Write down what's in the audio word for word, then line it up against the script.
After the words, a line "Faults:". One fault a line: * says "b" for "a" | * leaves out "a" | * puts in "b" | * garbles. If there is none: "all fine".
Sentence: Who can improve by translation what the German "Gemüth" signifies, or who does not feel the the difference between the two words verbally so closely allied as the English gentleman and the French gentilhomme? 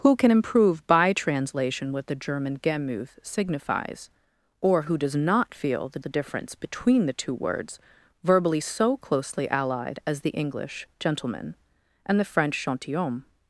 Who can improve by translation what the German "Gemüth" signifies, or who does not feel the the difference between the two words verbally so closely allied as the English gentleman and the French gentilhomme?
Faults:
all fine